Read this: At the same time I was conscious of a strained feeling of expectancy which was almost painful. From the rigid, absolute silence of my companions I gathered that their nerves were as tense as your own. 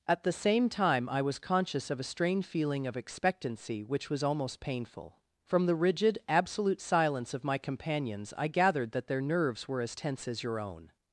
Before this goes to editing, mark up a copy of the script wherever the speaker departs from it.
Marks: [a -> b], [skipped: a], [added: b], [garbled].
At the same time I was conscious of a strained feeling of expectancy which was almost painful. From the rigid, absolute silence of my companions I gathered that their nerves were as tense as your own.